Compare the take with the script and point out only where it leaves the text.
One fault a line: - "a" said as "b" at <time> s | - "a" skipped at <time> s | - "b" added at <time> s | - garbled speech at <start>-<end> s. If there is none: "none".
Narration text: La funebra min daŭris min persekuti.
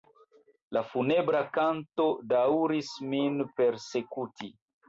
- "min" said as "kanto" at 1.6 s